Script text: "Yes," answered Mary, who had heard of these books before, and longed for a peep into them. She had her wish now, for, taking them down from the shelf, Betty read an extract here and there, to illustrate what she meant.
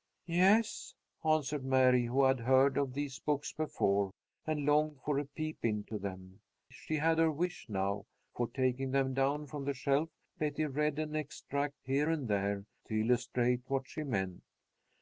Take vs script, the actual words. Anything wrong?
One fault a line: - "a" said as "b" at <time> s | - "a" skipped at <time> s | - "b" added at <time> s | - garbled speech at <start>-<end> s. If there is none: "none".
none